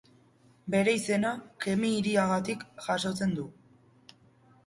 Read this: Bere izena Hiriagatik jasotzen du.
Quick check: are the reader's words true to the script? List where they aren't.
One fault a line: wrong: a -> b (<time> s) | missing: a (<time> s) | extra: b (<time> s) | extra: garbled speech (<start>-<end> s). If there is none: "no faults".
extra: Kemi (1.6 s)